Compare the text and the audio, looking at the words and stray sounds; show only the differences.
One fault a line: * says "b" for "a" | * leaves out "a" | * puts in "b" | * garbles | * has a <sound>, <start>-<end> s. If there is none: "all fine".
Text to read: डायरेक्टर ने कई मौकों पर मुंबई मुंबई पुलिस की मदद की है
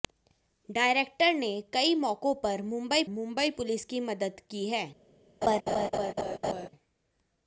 * has a laugh, 5.4-6.7 s